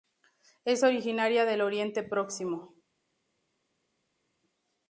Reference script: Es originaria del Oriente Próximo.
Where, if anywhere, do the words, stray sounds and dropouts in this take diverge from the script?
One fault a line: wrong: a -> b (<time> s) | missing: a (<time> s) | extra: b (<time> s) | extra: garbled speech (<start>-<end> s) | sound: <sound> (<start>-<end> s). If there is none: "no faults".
no faults